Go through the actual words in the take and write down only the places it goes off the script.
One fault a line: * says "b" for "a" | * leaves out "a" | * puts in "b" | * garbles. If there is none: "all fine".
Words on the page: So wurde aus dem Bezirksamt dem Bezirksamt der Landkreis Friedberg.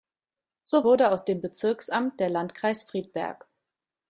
* leaves out "dem Bezirksamt"